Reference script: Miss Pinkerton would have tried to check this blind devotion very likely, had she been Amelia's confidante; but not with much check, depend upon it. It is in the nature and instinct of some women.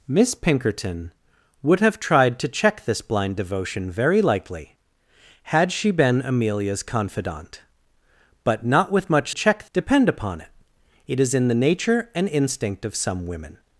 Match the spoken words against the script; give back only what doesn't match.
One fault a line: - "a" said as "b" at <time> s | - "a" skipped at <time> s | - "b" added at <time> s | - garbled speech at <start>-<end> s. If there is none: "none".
none